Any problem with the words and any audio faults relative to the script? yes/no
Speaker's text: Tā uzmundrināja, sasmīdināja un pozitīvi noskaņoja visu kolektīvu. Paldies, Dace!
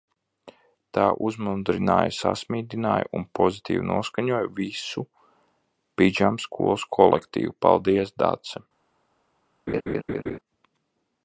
yes